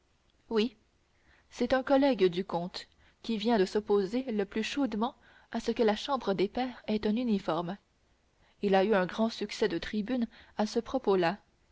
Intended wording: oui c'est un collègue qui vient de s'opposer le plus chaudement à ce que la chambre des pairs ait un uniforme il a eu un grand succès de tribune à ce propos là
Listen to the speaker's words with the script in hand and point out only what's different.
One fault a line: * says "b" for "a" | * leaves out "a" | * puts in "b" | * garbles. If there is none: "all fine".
* puts in "du comte"